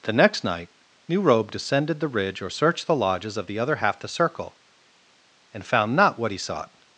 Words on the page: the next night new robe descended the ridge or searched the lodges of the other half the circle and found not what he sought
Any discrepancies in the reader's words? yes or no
no